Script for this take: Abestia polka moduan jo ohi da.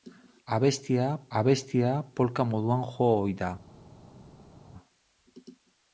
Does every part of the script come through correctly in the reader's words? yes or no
no